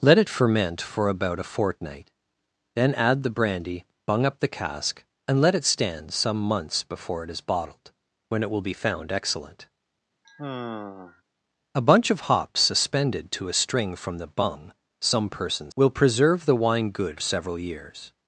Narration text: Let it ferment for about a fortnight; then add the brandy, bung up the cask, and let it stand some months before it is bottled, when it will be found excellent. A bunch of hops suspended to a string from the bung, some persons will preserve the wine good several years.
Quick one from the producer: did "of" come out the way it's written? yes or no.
yes